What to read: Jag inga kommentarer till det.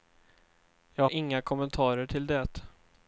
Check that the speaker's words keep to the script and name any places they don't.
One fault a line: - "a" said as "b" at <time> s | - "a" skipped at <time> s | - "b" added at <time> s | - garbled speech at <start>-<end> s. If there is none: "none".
none